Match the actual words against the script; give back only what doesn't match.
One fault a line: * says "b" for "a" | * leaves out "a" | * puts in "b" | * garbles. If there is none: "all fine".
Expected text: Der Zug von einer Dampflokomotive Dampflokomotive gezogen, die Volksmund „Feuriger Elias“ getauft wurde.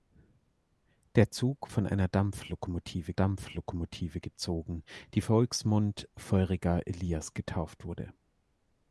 all fine